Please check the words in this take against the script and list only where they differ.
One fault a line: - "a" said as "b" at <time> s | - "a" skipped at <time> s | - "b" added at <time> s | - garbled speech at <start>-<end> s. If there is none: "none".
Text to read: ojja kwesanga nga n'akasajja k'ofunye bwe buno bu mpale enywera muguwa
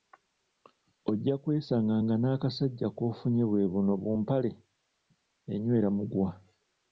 none